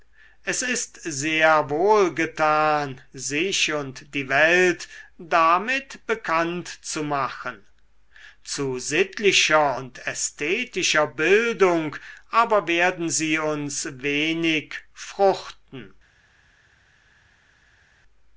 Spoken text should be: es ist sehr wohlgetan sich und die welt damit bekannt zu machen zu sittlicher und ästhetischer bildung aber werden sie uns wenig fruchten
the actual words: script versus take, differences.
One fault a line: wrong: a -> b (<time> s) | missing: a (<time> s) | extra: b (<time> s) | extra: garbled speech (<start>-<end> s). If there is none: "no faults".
no faults